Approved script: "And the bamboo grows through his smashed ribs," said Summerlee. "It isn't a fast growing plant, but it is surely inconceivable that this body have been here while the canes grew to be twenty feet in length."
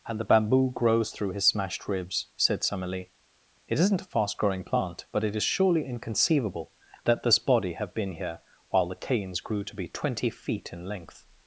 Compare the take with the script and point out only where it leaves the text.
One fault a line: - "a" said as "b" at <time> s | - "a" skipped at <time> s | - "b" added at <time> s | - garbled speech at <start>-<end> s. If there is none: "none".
none